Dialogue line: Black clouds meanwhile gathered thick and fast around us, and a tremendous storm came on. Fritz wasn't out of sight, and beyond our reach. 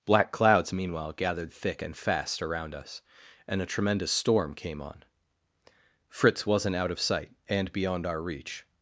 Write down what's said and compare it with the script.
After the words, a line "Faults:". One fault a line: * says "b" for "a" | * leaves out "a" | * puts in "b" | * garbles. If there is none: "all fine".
Black clouds meanwhile gathered thick and fast around us, and a tremendous storm came on. Fritz wasn't out of sight, and beyond our reach.
Faults:
all fine